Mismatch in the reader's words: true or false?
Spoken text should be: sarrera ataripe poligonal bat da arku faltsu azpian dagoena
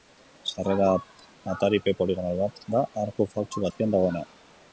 false